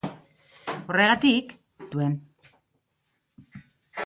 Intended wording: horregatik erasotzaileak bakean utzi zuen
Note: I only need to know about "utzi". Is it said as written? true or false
false